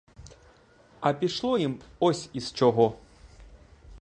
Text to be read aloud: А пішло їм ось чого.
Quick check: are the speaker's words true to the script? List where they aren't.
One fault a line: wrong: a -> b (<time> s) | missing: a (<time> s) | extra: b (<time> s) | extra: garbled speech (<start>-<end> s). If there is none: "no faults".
extra: із (2.3 s)